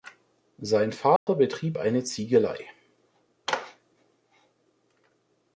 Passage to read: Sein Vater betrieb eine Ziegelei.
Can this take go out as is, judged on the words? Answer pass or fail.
pass